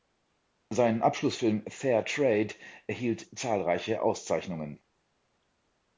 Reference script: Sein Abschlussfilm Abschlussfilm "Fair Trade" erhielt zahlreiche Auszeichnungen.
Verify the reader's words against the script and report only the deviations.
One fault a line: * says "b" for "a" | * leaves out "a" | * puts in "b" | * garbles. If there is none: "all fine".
* leaves out "Abschlussfilm"